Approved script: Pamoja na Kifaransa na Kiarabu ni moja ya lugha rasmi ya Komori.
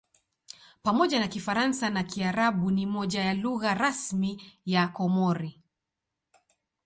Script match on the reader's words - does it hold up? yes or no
yes